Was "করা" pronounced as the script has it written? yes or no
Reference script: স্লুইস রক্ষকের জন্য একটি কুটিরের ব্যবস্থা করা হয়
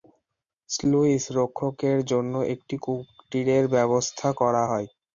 yes